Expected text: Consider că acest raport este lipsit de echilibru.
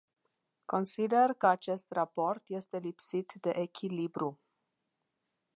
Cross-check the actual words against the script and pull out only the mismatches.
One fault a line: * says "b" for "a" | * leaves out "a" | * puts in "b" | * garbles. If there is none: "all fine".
all fine